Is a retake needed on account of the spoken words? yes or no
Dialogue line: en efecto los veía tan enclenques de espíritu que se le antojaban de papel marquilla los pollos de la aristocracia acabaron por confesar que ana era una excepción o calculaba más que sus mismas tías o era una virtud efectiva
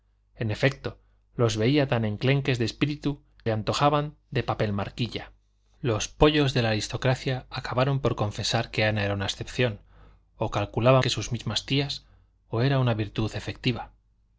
yes